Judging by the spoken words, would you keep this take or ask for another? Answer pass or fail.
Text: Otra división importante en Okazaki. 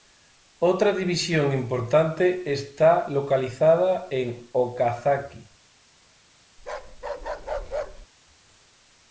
fail